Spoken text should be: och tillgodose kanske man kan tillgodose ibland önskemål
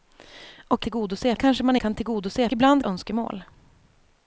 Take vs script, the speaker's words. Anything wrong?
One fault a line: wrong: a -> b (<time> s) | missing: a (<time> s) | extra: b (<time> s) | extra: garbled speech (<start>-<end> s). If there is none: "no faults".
no faults